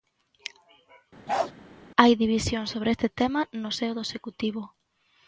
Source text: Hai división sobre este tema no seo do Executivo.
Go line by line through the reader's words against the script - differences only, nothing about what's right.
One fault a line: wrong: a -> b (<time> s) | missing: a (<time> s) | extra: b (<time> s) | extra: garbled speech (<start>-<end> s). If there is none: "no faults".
no faults